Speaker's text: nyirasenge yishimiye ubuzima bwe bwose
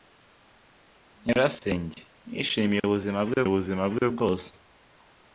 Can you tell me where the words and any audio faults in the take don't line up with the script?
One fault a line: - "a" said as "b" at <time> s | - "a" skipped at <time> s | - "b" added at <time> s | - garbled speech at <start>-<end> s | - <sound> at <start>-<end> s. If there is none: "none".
- "ubuzima bwe" added at 3.5 s